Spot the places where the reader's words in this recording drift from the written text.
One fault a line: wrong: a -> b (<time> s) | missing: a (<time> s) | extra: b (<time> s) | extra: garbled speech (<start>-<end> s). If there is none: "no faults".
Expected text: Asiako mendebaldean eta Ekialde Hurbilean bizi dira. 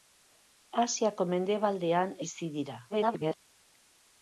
missing: eta Ekialde Hurbilean (2.2 s)
extra: garbled speech (2.9-3.4 s)